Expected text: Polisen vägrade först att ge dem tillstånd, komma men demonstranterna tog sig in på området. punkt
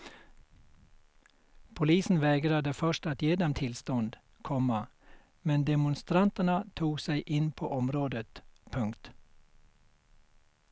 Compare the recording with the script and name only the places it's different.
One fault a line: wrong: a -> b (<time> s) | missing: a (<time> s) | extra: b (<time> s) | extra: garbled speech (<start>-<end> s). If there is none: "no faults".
no faults